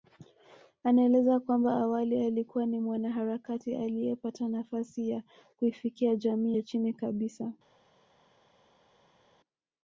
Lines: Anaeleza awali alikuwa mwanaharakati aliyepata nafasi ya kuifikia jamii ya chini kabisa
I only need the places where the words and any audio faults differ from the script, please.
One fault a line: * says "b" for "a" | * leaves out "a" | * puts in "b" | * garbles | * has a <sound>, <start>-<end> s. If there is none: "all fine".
* puts in "kwamba"
* puts in "ni"